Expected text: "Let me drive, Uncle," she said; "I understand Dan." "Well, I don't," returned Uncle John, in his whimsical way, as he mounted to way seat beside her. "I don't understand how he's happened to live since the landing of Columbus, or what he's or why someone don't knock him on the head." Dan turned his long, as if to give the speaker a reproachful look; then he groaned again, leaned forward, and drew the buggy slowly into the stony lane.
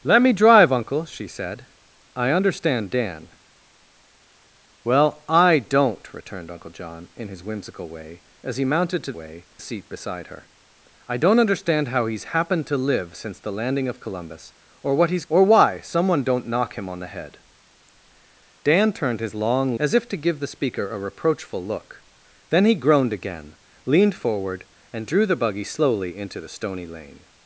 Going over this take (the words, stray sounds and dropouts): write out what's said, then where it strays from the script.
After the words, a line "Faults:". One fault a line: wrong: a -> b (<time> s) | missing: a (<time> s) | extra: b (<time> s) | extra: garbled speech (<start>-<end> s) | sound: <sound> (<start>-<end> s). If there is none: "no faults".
"Let me drive, Uncle," she said; "I understand Dan." "Well, I don't," returned Uncle John, in his whimsical way, as he mounted to way seat beside her. "I don't understand how he's happened to live since the landing of Columbus, or what he's or why someone don't knock him on the head." Dan turned his long, as if to give the speaker a reproachful look; then he groaned again, leaned forward, and drew the buggy slowly into the stony lane.
Faults:
no faults